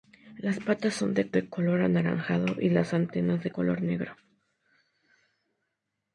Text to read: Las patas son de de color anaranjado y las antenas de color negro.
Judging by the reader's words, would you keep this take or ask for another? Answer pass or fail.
pass